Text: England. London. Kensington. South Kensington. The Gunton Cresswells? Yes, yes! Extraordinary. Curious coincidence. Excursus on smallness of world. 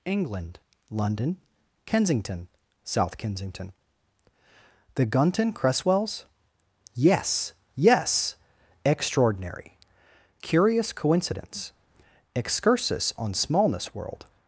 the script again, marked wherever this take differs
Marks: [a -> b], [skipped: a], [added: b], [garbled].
England. London. Kensington. South Kensington. The Gunton Cresswells? Yes, yes! Extraordinary. Curious coincidence. Excursus on smallness [skipped: of] world.